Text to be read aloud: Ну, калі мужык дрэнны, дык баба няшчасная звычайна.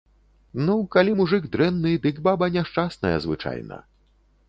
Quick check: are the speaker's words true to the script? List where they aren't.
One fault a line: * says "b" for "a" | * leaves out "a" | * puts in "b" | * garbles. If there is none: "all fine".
all fine